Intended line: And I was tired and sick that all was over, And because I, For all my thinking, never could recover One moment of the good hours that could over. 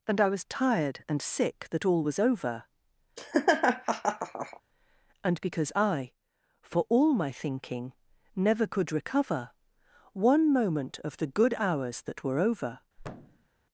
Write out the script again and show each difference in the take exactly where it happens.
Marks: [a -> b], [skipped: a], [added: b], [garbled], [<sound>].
And I was tired and sick that all was over, [laugh] And because I, For all my thinking, never could recover One moment of the good hours that [could -> were] over. [thud]